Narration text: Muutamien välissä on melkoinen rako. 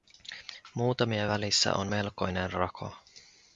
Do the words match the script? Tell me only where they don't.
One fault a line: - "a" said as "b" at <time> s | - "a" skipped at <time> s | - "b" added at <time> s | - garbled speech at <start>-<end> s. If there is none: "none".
none